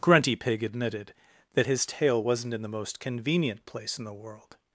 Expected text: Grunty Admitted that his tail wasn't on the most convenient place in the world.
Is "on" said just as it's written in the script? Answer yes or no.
no